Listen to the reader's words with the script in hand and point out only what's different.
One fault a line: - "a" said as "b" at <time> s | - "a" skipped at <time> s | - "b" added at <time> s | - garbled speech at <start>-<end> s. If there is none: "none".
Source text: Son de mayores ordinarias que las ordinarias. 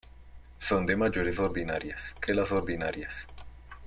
none